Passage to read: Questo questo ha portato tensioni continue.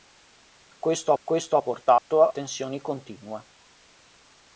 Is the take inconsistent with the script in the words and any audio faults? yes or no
yes